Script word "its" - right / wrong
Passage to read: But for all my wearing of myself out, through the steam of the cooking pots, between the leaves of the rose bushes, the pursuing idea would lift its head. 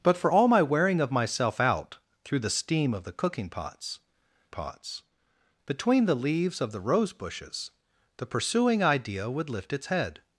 right